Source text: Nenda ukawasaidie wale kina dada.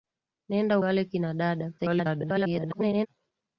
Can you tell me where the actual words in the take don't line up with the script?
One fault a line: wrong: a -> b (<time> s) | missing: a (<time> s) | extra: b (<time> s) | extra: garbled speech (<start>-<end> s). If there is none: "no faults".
missing: ukawasaidie (0.8 s)
extra: garbled speech (1.8-3.1 s)